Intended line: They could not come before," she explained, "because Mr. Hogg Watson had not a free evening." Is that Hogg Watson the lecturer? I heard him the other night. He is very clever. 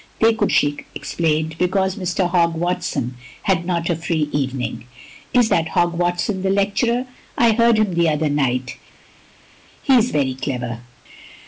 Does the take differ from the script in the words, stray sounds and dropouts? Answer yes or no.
yes